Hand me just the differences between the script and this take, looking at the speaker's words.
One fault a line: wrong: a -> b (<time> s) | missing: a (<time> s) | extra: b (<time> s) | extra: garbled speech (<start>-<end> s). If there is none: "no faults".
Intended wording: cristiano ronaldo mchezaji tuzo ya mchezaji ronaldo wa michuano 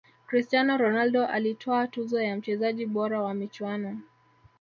wrong: mchezaji -> alitwaa (1.3 s)
wrong: ronaldo -> bora (2.9 s)